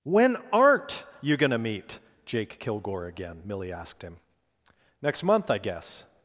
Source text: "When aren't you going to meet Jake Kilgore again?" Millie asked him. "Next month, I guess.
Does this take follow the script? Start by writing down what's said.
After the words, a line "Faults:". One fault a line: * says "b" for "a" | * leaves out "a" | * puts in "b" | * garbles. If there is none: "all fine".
"When aren't you going to meet Jake Kilgore again?" Millie asked him. "Next month, I guess.
Faults:
all fine